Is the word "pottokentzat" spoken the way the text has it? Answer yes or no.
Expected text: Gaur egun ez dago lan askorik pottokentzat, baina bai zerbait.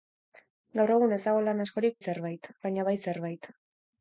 no